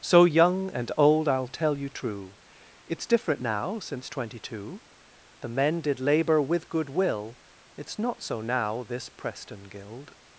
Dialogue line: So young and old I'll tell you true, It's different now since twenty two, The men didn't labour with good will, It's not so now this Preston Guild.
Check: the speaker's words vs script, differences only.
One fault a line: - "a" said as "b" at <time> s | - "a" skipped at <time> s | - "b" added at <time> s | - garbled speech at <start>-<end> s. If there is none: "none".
- "didn't" said as "did" at 5.8 s